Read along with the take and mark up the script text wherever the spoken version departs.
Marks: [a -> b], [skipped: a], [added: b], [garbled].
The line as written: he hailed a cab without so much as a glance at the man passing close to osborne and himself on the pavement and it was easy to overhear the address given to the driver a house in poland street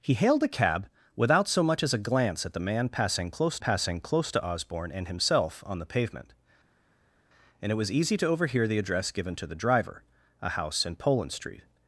he hailed a cab without so much as a glance at the man passing close [added: passing close] to osborne and himself on the pavement and it was easy to overhear the address given to the driver a house in poland street